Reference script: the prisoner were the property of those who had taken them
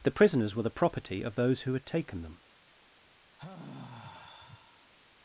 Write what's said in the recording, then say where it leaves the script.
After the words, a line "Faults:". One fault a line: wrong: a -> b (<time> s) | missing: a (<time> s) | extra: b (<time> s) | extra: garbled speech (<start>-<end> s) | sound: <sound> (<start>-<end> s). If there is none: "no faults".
the prisoners were the property of those who had taken them
Faults:
wrong: prisoner -> prisoners (0.1 s)
sound: sigh (3.4-4.9 s)